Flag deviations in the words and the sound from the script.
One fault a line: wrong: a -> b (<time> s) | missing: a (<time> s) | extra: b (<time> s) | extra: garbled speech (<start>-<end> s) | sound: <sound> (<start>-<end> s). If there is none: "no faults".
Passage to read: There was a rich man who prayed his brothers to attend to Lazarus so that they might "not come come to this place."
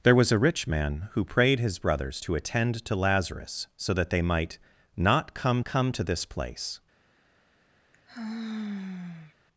sound: sigh (7.9-9.3 s)